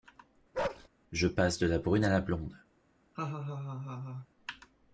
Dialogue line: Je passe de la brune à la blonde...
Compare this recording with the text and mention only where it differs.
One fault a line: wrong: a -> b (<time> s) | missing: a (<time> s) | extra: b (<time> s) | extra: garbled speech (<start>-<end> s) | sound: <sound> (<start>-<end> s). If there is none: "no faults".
sound: bark (0.5-0.9 s)
sound: laugh (3.1-4.3 s)